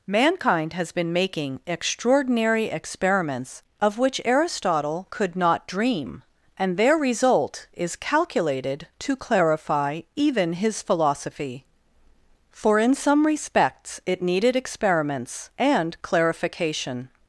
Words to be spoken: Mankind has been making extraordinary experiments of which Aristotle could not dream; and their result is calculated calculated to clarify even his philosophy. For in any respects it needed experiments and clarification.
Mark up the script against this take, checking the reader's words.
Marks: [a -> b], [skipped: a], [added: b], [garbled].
Mankind has been making extraordinary experiments of which Aristotle could not dream; and their result is calculated [skipped: calculated] to clarify even his philosophy. For in [any -> some] respects it needed experiments and clarification.